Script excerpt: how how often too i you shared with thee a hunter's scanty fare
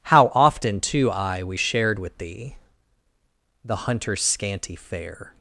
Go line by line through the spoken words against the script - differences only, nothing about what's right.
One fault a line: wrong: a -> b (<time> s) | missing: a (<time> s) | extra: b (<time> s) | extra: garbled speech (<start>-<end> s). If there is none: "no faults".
missing: how (0.3 s)
wrong: you -> we (1.4 s)
wrong: a -> the (3.6 s)